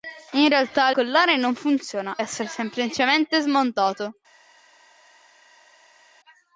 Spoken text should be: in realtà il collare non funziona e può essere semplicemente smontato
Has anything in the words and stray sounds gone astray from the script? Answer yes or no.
yes